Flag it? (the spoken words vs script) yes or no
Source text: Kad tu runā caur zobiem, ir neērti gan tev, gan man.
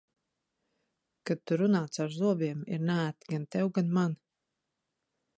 no